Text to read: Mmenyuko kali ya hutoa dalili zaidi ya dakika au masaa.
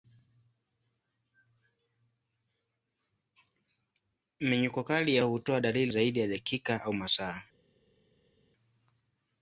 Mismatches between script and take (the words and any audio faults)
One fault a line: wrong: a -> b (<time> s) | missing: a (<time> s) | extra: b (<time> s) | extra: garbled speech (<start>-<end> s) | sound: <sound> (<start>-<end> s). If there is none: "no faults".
no faults